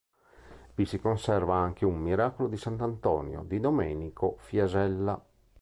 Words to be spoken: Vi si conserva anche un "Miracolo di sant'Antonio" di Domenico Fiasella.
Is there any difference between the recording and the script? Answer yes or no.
no